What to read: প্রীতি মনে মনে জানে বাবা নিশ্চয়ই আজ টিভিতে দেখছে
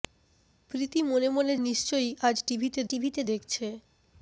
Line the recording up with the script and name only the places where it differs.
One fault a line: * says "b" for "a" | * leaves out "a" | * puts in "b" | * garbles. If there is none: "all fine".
* leaves out "জানে বাবা"
* puts in "টিভিতে"